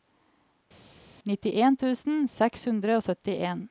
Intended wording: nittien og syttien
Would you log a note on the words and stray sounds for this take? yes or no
yes